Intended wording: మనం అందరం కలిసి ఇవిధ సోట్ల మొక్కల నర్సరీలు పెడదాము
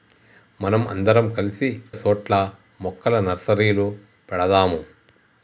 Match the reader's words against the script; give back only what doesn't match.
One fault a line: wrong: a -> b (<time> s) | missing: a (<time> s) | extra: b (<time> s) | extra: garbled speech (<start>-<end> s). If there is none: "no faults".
missing: ఇవిధ (1.7 s)